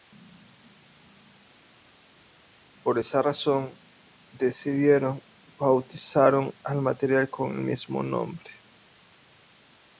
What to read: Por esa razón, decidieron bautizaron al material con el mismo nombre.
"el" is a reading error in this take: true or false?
false